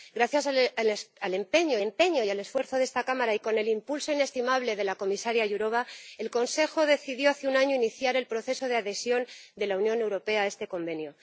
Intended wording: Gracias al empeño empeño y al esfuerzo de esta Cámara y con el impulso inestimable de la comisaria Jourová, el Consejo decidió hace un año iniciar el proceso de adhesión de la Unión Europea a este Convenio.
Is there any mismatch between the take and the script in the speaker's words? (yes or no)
no